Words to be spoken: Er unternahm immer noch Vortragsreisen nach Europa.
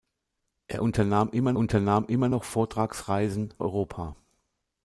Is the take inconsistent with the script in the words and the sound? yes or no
yes